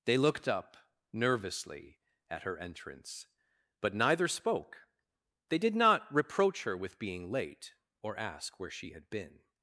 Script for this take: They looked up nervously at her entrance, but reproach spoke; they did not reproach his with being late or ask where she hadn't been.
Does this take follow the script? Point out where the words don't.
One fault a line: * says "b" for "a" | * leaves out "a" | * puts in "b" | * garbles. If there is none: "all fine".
* says "neither" for "reproach"
* says "her" for "his"
* says "had" for "hadn't"